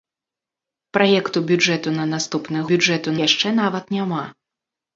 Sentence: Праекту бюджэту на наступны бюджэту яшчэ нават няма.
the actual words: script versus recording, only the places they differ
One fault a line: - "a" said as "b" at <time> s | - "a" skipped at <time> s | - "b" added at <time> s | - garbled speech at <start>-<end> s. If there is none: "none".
none